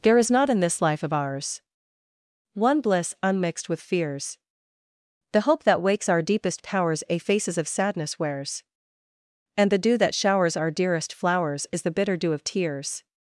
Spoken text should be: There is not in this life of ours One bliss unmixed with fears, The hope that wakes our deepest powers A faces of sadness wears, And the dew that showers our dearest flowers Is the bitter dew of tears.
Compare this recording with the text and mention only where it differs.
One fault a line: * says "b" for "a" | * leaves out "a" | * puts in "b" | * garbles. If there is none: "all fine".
all fine